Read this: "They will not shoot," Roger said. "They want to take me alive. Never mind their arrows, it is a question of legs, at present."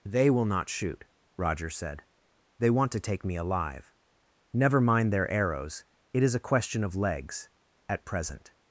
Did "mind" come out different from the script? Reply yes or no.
no